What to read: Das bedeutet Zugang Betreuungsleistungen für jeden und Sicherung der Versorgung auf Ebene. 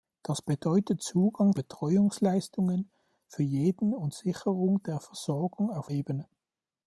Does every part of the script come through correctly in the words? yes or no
yes